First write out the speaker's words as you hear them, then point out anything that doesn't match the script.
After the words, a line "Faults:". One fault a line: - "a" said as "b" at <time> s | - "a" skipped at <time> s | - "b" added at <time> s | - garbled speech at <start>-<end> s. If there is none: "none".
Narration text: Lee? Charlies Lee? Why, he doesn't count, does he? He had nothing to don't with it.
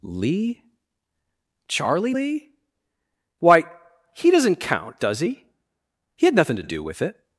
Lee? Charlie Lee? Why, he doesn't count, does he? He had nothing to do with it.
Faults:
- "Charlies" said as "Charlie" at 1.7 s
- "don't" said as "do" at 6.6 s